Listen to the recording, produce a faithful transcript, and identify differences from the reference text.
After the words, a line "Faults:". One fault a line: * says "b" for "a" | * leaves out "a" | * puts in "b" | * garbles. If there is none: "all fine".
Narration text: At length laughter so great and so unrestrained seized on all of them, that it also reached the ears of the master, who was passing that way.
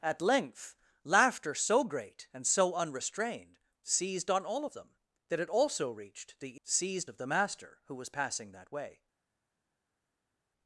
At length laughter so great and so unrestrained seized on all of them, that it also reached the seized of the master, who was passing that way.
Faults:
* says "seized" for "ears"